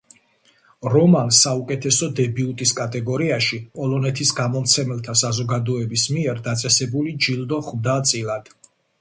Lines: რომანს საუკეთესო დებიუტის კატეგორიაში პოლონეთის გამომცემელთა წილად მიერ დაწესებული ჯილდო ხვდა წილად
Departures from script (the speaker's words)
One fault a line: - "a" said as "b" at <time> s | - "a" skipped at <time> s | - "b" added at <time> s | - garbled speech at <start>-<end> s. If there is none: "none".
- "წილად" said as "საზოგადოების" at 5.2 s